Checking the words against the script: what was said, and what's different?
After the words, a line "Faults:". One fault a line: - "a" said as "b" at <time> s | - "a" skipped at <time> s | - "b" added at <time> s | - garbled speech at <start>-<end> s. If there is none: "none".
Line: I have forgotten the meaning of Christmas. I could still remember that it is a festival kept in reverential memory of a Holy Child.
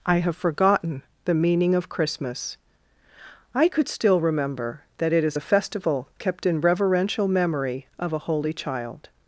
I have forgotten the meaning of Christmas. I could still remember that it is a festival kept in reverential memory of a Holy Child.
Faults:
none